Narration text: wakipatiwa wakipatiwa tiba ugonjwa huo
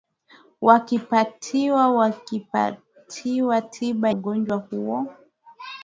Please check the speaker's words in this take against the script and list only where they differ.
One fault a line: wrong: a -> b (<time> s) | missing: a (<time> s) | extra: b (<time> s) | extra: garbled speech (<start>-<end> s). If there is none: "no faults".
no faults